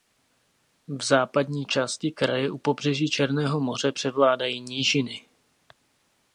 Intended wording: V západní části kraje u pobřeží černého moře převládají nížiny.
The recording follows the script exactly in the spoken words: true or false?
true